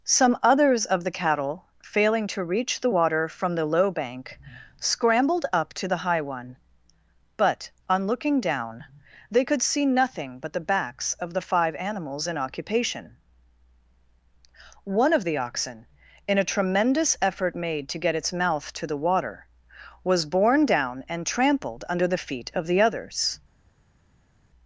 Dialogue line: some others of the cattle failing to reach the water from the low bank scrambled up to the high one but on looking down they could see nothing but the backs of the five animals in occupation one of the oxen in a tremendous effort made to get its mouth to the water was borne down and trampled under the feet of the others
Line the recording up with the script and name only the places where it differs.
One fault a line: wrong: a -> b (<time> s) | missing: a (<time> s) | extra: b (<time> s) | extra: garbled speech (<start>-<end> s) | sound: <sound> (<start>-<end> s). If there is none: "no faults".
no faults